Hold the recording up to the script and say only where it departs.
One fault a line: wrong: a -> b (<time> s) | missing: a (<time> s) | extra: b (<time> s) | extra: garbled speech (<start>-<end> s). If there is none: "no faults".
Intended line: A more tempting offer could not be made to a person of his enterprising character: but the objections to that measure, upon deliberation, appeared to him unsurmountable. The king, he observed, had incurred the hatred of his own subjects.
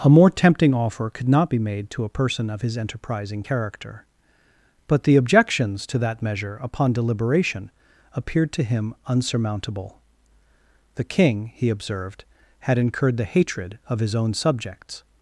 no faults